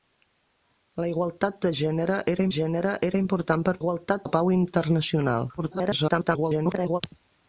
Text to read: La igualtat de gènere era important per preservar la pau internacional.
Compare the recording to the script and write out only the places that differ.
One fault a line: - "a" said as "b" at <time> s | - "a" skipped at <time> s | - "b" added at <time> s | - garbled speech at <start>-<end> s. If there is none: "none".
- "gènere era" added at 2.6 s
- "preservar" said as "igualtat" at 3.8 s
- garbled speech at 5.6-7.0 s